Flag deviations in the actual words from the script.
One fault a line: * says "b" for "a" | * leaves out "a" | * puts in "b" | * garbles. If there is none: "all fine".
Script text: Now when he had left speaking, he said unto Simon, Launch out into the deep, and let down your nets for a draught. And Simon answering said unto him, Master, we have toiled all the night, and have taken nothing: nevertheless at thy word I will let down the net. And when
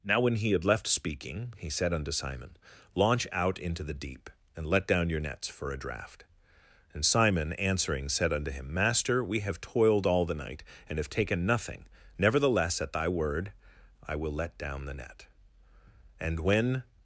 all fine